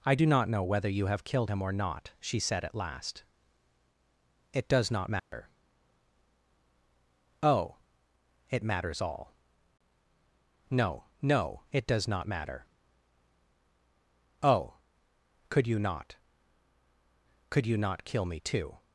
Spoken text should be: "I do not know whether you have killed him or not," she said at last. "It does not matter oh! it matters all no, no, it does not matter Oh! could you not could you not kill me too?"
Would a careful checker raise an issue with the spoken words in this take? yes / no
no